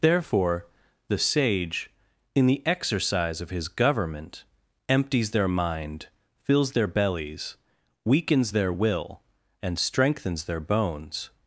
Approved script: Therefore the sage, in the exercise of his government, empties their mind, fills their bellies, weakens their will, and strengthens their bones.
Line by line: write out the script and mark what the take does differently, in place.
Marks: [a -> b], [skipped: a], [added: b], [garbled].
Therefore the sage, in the exercise of his government, empties their mind, fills their bellies, weakens their will, and strengthens their bones.